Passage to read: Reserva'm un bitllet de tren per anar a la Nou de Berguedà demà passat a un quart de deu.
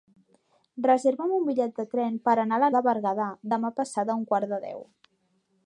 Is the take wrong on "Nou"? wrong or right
wrong